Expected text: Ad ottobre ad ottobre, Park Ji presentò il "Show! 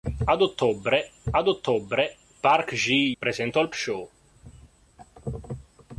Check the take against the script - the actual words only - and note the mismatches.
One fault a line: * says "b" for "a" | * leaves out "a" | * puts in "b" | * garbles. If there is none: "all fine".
all fine